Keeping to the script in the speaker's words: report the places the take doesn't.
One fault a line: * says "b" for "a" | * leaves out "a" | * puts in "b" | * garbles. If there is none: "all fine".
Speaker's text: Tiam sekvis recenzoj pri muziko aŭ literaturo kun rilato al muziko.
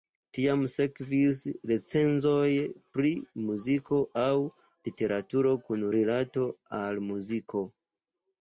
all fine